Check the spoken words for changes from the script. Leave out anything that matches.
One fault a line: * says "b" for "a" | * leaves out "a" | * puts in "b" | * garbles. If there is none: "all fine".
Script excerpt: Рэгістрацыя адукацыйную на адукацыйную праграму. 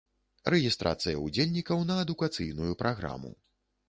* says "ўдзельнікаў" for "адукацыйную"